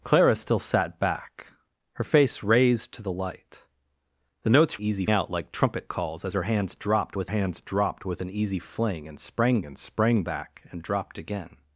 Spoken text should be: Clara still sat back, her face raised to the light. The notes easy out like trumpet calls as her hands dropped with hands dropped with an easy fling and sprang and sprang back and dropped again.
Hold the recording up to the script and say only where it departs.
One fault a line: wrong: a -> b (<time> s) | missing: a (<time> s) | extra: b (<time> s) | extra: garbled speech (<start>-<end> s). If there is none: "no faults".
no faults